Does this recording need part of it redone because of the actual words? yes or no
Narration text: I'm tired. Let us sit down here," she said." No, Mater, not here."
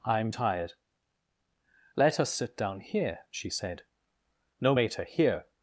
yes